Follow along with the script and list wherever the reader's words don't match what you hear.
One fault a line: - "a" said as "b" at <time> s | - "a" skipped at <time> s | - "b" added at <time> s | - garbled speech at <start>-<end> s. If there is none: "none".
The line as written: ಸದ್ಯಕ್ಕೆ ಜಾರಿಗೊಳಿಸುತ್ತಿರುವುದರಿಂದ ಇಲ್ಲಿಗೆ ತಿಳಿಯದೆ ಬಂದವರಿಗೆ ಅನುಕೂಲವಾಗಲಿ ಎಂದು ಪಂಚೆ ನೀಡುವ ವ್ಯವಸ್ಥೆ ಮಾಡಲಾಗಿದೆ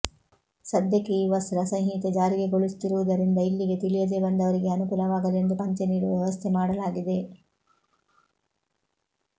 - "ಈ ವಸ್ತ್ರ ಸಂಹಿತೆ" added at 1.1 s